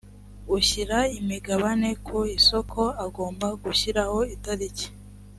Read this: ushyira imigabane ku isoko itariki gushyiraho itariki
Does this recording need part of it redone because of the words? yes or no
yes